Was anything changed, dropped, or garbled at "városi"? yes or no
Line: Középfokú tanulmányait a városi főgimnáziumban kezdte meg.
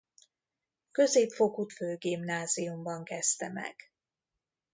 yes